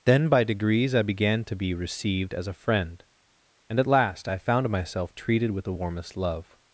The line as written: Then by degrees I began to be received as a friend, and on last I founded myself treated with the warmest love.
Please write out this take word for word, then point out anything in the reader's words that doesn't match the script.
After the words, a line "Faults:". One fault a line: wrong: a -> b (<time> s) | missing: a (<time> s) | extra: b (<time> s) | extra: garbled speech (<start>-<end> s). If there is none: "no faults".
Then by degrees I began to be received as a friend, and at last I found myself treated with the warmest love.
Faults:
wrong: on -> at (3.8 s)
wrong: founded -> found (4.4 s)